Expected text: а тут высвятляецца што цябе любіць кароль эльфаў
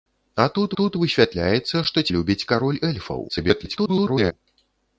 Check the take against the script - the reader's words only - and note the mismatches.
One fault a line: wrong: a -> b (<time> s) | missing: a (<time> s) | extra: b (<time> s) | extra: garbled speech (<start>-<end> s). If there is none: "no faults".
extra: тут (0.8 s)
missing: цябе (2.0 s)
extra: garbled speech (3.3-4.3 s)